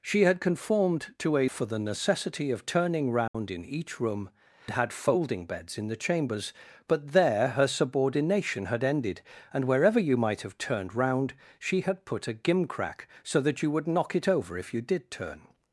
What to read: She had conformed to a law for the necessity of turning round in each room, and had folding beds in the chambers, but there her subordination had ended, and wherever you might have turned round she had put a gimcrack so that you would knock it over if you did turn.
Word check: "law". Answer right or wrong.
wrong